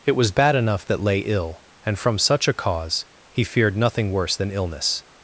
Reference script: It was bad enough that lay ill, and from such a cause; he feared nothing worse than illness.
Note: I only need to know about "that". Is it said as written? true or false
true